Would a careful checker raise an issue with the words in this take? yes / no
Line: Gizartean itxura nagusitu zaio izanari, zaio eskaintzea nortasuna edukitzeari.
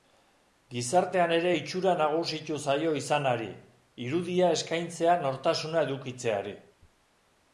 yes